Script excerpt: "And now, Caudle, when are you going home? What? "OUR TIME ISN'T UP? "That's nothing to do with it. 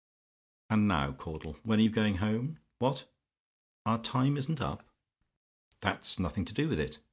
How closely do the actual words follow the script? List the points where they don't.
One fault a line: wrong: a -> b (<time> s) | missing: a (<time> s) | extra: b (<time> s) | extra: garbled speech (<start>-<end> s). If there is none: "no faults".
no faults